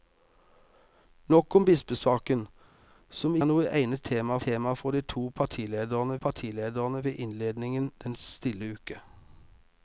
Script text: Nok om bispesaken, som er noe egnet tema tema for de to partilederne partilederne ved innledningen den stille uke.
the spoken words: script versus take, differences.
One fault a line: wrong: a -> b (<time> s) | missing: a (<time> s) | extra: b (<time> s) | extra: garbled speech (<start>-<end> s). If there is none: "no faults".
no faults